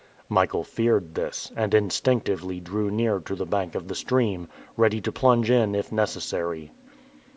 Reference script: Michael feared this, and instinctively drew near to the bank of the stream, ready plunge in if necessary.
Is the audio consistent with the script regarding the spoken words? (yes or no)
no